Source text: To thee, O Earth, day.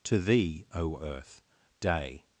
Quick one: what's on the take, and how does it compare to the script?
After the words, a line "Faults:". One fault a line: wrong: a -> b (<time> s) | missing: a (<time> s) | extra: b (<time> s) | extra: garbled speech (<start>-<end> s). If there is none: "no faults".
To thee, O Earth, day.
Faults:
no faults